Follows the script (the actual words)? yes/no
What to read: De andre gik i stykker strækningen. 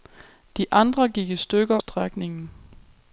yes